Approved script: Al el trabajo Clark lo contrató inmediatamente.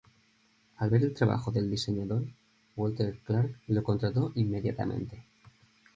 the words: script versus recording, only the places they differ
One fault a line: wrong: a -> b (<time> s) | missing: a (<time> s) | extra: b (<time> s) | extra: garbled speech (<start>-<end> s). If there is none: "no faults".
extra: ver (0.9 s)
extra: del diseñador Walter (1.5 s)